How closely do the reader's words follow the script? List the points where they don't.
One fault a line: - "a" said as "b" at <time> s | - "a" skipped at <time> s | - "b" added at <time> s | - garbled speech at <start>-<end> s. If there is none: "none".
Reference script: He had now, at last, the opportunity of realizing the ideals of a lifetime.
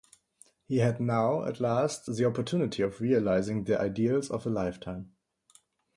none